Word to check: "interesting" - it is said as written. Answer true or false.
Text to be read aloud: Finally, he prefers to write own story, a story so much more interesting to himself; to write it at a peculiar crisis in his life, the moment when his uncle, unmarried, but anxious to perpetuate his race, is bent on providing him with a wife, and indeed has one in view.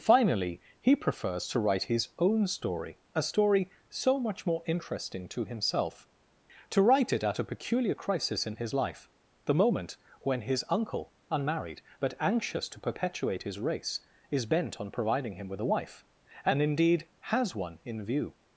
true